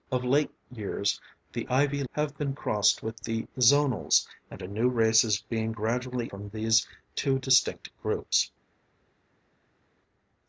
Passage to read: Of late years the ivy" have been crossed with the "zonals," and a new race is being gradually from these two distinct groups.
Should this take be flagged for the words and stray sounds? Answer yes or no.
no